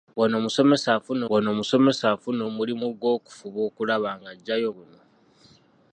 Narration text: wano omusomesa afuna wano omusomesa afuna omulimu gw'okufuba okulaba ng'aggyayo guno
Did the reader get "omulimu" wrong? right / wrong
right